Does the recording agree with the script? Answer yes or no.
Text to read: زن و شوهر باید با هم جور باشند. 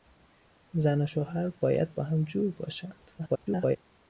no